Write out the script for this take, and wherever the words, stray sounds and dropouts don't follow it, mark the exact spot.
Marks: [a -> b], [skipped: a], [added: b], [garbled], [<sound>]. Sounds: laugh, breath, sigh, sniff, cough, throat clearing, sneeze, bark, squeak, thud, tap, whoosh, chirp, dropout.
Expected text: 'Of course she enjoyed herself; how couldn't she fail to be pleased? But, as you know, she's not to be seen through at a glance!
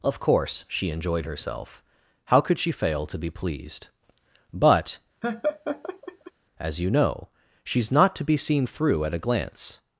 'Of course she enjoyed herself; how [couldn't -> could] she fail to be pleased? But, [laugh] as you know, she's not to be seen through at a glance!